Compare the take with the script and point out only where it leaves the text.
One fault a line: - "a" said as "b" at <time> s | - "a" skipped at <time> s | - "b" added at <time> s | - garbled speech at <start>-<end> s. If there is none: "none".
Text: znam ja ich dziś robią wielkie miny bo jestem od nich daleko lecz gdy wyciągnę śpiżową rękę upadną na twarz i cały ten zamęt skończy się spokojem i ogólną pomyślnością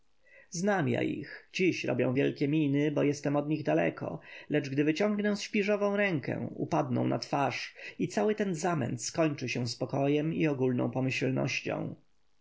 none